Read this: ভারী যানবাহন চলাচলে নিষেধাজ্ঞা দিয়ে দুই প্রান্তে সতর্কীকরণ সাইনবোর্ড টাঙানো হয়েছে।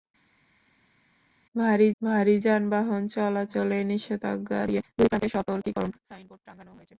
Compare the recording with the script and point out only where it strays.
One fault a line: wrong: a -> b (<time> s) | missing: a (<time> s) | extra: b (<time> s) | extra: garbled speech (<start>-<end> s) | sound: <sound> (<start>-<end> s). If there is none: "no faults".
extra: ভারী (2.0 s)